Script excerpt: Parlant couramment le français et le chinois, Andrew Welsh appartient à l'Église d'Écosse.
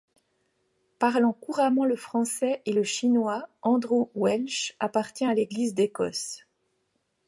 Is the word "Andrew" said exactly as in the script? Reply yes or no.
yes